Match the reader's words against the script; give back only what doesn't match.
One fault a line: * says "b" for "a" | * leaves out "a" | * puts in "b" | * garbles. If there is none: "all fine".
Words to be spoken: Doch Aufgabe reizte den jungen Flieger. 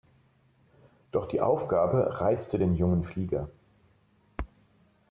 * puts in "die"